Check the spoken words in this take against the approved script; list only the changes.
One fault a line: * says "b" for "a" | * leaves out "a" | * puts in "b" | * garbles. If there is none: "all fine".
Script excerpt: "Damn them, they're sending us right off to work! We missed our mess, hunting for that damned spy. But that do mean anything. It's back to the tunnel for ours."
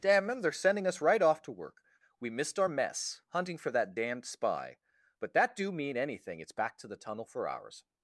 all fine